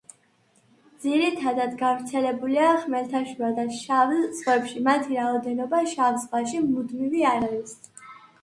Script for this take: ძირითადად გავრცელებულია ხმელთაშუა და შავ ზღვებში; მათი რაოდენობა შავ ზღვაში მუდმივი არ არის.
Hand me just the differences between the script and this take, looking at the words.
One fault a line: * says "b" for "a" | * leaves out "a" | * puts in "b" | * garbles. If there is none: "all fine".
all fine